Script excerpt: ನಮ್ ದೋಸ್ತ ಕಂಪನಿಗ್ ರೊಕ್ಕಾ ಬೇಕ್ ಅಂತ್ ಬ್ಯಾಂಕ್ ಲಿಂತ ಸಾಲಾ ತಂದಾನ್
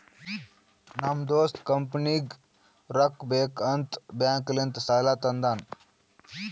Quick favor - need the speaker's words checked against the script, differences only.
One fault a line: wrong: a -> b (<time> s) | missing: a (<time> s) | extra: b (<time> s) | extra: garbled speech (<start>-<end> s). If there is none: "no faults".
no faults